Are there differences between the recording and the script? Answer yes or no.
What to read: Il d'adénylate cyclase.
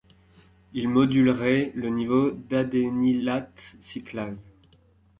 yes